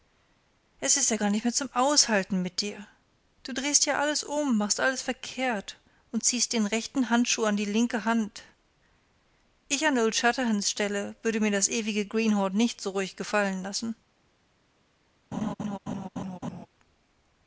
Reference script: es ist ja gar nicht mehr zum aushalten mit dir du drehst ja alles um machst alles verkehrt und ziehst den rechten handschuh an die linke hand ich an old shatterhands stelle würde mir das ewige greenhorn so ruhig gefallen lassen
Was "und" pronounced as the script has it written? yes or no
yes